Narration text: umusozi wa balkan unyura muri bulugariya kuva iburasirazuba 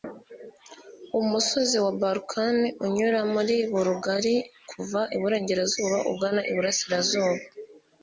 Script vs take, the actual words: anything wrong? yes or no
yes